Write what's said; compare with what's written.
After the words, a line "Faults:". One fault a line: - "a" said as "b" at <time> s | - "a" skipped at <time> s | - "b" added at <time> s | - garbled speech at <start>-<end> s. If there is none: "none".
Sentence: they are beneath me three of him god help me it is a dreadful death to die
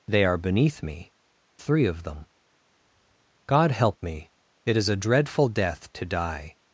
they are beneath me three of them god help me it is a dreadful death to die
Faults:
- "him" said as "them" at 2.0 s